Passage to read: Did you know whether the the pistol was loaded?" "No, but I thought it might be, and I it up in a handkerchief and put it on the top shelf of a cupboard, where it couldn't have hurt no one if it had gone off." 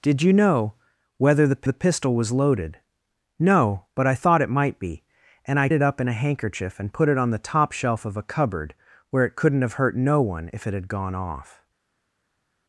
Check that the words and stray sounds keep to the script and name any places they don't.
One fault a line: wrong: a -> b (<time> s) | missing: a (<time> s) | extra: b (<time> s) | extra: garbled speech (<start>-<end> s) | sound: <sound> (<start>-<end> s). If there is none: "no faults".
no faults